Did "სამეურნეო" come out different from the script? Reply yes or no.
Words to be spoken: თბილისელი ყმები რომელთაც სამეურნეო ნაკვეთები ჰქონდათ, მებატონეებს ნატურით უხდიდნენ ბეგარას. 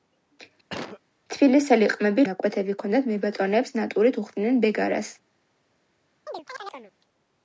yes